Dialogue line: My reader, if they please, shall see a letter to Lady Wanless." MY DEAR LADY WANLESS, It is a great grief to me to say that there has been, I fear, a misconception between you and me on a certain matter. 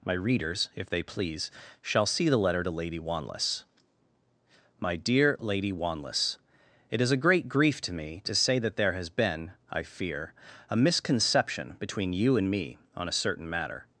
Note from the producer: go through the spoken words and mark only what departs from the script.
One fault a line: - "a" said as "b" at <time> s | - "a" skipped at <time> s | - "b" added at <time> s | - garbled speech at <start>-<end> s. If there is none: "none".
- "reader" said as "readers" at 0.1 s
- "a" said as "the" at 2.3 s